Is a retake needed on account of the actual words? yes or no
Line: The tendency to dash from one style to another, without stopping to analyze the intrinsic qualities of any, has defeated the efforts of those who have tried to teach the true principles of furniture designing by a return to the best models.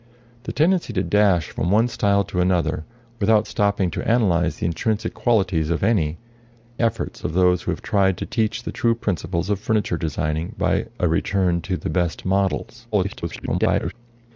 yes